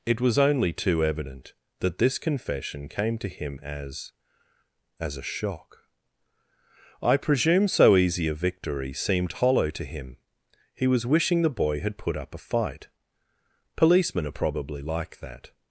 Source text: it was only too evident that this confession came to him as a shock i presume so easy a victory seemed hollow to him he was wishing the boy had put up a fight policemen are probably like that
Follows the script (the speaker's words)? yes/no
no